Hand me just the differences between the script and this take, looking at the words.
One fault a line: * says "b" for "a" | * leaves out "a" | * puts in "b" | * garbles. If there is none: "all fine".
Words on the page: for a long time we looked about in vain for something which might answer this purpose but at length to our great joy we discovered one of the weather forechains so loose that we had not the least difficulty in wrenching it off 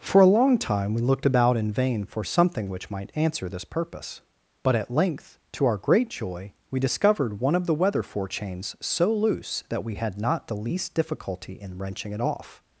all fine